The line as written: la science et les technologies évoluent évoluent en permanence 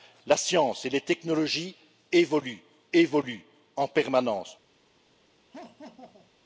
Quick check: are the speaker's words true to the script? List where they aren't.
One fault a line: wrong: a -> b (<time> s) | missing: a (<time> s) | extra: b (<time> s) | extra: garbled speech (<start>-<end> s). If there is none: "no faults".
no faults